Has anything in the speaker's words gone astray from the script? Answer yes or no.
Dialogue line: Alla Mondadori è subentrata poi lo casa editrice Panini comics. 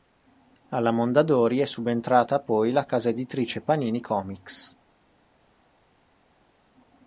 yes